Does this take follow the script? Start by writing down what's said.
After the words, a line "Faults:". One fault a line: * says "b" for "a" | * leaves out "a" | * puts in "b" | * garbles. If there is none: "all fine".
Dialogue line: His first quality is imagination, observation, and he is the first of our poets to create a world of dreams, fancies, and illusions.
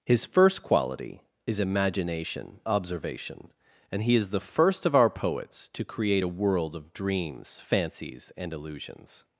His first quality is imagination, observation, and he is the first of our poets to create a world of dreams, fancies, and illusions.
Faults:
all fine